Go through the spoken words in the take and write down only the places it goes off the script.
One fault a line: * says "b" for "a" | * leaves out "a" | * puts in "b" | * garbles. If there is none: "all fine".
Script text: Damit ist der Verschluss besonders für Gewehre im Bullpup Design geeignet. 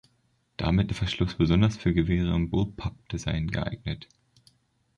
* leaves out "ist"